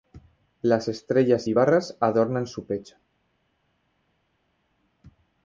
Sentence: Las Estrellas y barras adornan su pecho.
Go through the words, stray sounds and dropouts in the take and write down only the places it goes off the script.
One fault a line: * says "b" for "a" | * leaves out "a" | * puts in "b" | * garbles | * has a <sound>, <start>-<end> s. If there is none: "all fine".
all fine